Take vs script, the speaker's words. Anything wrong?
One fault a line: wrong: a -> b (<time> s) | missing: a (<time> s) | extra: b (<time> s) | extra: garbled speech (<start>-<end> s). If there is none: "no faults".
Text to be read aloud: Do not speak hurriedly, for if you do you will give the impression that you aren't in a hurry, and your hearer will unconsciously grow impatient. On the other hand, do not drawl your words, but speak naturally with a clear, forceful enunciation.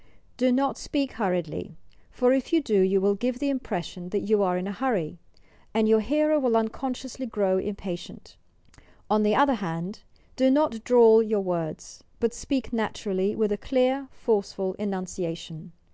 wrong: aren't -> are (4.4 s)